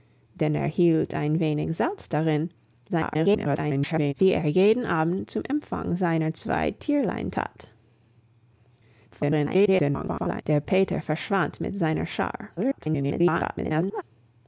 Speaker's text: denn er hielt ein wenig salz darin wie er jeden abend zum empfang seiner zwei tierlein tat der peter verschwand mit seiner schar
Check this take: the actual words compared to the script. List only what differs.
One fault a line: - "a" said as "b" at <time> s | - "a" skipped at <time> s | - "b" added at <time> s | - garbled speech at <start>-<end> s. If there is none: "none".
- garbled speech at 2.9-4.1 s
- garbled speech at 9.1-10.4 s
- garbled speech at 12.6-14.0 s